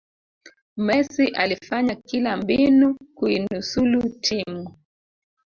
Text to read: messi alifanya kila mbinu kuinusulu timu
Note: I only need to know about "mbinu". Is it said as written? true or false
true